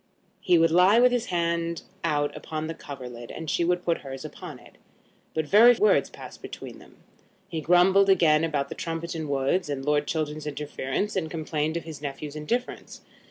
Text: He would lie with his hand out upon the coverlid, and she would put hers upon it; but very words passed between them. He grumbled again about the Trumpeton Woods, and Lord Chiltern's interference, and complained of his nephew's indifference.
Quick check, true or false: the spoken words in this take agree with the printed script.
true